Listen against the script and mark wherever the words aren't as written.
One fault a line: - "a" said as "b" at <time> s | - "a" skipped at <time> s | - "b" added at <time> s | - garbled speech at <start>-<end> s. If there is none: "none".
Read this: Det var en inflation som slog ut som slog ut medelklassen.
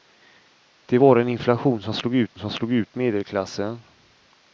none